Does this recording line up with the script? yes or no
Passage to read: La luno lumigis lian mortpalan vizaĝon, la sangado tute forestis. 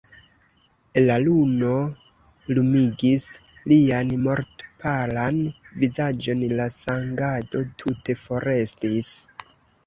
yes